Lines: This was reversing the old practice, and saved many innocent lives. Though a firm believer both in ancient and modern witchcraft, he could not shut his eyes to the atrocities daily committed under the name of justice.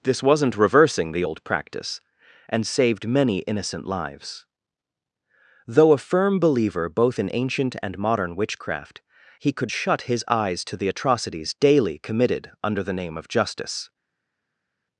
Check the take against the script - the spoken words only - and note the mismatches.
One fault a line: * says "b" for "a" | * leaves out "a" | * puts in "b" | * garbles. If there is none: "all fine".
* says "wasn't" for "was"
* leaves out "not"